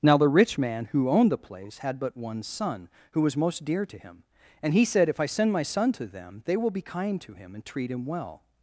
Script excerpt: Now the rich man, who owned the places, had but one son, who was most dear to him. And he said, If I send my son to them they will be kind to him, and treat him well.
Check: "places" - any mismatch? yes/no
yes